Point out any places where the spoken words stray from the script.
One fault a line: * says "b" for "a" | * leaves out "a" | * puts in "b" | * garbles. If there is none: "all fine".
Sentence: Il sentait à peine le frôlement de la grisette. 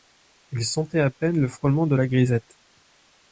all fine